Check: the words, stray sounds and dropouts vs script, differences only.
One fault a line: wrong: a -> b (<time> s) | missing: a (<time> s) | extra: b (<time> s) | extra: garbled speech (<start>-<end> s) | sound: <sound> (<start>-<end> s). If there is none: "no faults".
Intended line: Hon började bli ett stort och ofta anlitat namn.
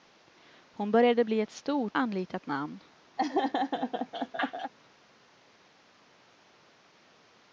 missing: och ofta (2.0 s)
sound: laugh (3.2-4.7 s)